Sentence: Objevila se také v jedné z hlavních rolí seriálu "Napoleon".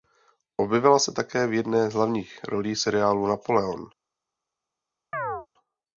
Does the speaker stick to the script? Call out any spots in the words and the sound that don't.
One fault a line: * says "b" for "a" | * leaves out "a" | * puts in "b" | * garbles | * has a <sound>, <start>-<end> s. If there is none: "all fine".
* has a chirp, 5.1-5.5 s